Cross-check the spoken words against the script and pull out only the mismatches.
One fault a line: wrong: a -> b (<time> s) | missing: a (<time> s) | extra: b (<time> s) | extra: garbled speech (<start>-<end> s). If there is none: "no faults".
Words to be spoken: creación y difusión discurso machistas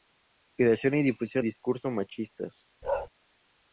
no faults